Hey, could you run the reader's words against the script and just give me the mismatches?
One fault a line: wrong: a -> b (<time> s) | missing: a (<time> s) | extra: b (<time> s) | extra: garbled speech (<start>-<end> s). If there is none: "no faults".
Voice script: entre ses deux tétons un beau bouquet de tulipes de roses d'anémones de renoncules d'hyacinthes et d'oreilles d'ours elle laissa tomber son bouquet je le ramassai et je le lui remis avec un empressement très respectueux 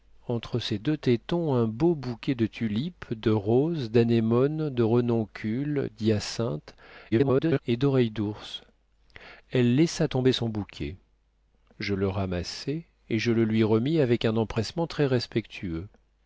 extra: garbled speech (7.1-7.6 s)